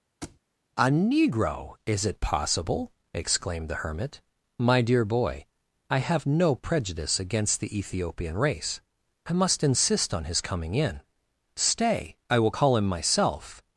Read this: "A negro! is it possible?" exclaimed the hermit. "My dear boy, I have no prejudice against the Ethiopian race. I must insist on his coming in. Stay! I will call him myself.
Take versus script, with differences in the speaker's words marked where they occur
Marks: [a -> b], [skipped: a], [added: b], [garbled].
"A negro! is it possible?" exclaimed the hermit. "My dear boy, I have no prejudice against the Ethiopian race. I must insist on his coming in. Stay! I will call him myself.